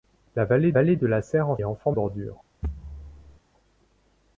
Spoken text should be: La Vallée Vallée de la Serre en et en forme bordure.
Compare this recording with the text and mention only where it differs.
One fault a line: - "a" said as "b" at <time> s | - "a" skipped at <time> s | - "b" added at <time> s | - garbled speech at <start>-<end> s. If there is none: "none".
none